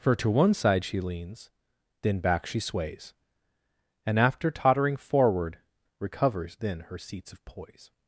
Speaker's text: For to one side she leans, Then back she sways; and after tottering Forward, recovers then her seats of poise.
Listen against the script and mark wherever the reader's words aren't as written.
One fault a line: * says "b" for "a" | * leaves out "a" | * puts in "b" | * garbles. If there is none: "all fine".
all fine